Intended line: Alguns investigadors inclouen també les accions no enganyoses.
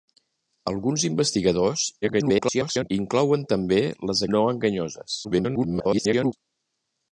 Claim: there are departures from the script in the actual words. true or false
true